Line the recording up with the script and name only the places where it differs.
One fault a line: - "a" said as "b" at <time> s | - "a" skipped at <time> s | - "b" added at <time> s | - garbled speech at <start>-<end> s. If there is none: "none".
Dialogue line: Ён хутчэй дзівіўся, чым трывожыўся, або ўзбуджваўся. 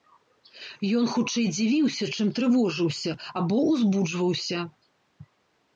none